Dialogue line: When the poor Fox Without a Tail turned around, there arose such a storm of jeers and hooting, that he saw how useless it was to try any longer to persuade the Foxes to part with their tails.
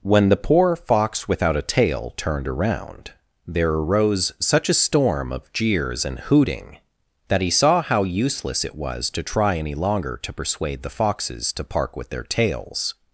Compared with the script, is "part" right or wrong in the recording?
wrong